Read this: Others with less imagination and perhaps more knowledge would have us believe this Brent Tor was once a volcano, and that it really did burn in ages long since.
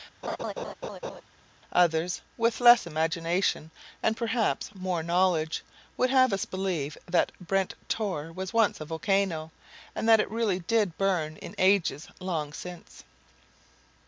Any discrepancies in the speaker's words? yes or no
yes